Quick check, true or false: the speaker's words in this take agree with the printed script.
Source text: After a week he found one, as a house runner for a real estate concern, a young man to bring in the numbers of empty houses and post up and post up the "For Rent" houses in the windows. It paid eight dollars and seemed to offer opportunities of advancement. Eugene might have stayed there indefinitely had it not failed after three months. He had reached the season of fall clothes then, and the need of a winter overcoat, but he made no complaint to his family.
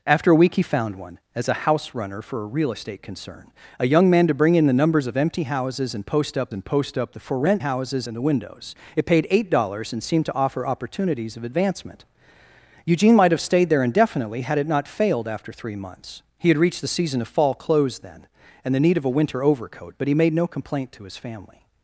true